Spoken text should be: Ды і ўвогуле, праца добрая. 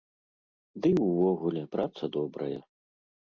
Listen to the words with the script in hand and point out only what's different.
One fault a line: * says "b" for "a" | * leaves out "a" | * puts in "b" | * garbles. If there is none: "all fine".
all fine